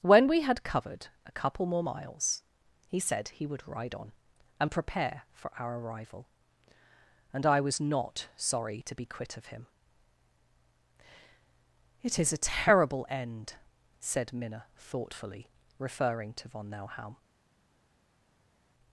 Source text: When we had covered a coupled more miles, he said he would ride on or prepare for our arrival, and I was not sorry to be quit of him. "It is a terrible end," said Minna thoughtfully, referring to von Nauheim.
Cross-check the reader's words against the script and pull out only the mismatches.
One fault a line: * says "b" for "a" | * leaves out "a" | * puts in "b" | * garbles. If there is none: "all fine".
* says "couple" for "coupled"
* says "and" for "or"